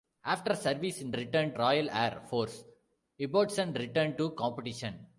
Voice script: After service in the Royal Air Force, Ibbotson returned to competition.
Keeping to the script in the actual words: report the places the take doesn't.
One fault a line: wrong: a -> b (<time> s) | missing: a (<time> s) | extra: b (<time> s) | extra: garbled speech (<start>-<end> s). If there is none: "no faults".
wrong: the -> returned (1.2 s)